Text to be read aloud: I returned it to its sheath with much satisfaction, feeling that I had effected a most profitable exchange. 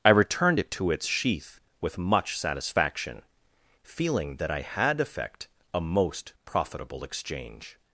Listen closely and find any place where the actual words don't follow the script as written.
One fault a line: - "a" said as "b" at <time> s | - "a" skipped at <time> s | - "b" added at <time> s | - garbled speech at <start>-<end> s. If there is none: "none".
- "effected" said as "effect" at 5.0 s